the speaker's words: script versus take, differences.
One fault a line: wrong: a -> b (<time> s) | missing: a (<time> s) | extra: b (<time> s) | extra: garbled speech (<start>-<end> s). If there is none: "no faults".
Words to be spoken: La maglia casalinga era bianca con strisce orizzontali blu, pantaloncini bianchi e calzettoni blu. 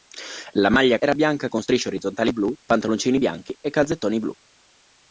missing: casalinga (1.0 s)